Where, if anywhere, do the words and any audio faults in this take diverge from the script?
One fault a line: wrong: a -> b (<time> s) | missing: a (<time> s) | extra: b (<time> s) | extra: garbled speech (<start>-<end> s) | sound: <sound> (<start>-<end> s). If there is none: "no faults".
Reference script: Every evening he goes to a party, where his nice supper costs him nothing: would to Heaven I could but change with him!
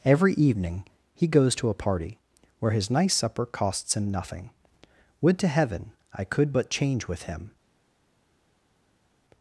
no faults